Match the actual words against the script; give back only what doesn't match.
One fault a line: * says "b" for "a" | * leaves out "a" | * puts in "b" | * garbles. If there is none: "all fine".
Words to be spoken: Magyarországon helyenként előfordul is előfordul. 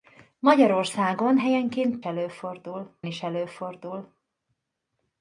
all fine